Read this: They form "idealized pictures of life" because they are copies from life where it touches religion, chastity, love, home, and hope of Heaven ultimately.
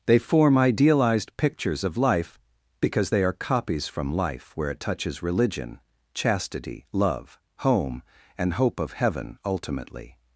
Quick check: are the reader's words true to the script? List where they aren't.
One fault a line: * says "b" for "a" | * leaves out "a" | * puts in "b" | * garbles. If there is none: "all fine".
all fine